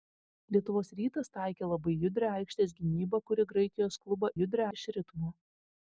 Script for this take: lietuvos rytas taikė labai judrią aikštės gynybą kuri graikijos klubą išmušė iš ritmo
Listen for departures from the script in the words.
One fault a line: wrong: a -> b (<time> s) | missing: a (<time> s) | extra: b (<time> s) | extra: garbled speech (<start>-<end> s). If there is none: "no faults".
wrong: išmušė -> judrią (4.4 s)